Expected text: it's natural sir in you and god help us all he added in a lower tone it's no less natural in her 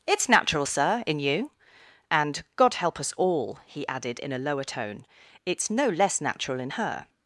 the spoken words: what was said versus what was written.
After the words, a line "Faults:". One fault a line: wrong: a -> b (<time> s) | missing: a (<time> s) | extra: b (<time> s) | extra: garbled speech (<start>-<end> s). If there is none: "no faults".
it's natural sir in you and god help us all he added in a lower tone it's no less natural in her
Faults:
no faults